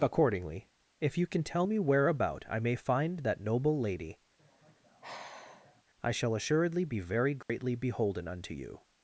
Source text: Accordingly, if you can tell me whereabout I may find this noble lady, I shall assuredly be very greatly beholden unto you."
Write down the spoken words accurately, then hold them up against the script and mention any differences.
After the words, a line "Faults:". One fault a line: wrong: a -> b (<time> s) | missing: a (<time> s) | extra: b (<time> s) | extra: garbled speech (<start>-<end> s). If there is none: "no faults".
Accordingly, if you can tell me whereabout I may find that noble lady, I shall assuredly be very greatly beholden unto you."
Faults:
wrong: this -> that (3.2 s)